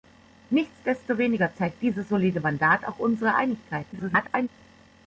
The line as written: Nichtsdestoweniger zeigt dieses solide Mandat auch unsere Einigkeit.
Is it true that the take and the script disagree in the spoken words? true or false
true